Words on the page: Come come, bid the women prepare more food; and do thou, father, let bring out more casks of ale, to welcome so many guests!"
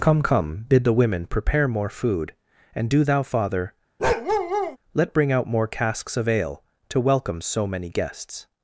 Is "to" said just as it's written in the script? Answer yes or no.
yes